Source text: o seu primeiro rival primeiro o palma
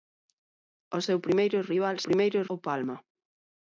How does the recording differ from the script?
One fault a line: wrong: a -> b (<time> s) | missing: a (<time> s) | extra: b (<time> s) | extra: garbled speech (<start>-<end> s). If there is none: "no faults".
no faults